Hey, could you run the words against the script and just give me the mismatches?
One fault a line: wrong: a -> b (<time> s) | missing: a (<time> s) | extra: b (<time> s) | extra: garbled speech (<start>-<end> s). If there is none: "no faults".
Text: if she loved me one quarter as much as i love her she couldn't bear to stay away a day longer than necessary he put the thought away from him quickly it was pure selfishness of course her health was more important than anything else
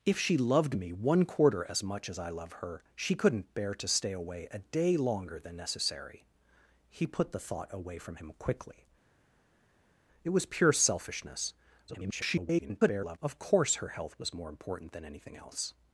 extra: garbled speech (11.9-13.2 s)